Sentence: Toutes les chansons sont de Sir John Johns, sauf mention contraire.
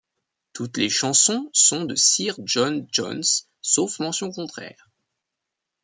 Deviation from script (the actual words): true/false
false